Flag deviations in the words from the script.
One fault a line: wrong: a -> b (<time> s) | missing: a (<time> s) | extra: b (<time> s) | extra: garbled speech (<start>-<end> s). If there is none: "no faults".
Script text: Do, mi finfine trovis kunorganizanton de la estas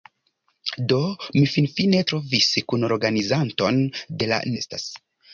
no faults